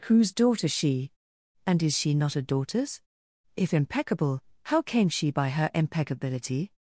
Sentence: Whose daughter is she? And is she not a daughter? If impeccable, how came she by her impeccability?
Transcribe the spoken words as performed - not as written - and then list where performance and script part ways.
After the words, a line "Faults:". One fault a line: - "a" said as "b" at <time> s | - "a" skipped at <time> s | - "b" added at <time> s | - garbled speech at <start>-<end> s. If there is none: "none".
Whose daughter she? And is she not a daughters? If impeccable, how came she by her impeccability?
Faults:
- "is" skipped at 0.7 s
- "daughter" said as "daughters" at 2.4 s